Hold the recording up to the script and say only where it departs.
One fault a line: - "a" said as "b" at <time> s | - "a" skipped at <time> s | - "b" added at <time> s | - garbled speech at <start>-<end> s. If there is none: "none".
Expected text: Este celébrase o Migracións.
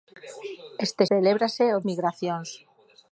none